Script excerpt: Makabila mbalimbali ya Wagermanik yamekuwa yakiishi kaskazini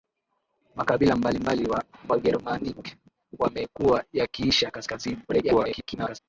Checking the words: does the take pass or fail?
fail